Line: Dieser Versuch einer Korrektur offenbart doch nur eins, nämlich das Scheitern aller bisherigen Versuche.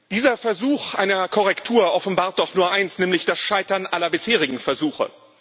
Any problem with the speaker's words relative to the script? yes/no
no